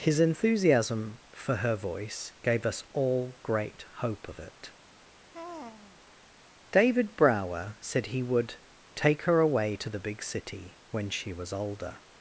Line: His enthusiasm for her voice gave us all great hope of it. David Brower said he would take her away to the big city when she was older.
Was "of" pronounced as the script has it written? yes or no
yes